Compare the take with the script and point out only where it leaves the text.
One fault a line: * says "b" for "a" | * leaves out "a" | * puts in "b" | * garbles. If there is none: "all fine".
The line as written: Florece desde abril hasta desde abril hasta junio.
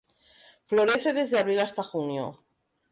* leaves out "desde abril hasta"